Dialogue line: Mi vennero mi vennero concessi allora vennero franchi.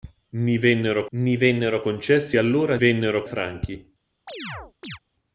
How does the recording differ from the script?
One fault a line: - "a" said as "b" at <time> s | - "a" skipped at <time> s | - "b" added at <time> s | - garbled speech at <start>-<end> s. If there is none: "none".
none